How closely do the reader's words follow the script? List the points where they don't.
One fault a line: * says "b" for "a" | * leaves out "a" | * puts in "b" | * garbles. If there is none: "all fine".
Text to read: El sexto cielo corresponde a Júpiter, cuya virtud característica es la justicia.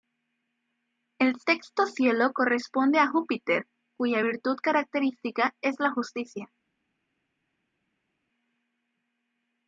all fine